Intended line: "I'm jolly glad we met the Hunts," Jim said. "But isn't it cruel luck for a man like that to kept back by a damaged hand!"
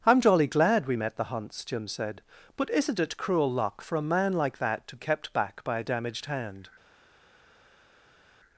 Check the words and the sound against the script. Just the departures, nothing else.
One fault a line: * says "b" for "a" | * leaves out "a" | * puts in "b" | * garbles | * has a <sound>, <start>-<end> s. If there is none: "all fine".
all fine